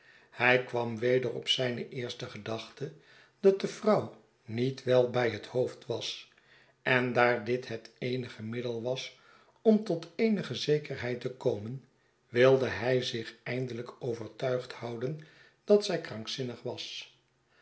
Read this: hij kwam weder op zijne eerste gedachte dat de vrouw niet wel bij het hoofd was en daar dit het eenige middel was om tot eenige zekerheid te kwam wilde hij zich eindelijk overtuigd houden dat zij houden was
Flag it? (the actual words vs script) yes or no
yes